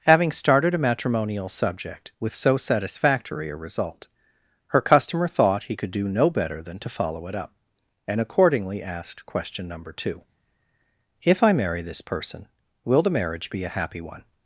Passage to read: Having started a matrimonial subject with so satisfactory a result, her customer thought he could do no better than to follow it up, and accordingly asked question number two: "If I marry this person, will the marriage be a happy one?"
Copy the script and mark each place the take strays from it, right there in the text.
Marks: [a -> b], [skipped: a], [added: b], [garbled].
Having started a matrimonial subject with so satisfactory a result, her customer thought he could do no better than to follow it up, and accordingly asked question number two: "If I marry this person, will the marriage be a happy one?"